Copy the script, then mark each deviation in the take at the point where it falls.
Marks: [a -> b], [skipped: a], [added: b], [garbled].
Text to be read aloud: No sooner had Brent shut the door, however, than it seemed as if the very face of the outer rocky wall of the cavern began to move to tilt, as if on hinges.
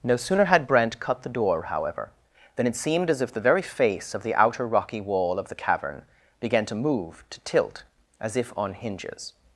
No sooner had Brent [shut -> cut] the door, however, than it seemed as if the very face of the outer rocky wall of the cavern began to move to tilt, as if on hinges.